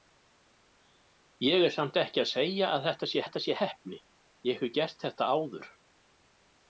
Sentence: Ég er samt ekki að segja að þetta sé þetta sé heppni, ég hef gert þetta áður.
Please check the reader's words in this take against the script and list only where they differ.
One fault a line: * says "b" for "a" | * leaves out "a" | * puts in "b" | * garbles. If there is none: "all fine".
all fine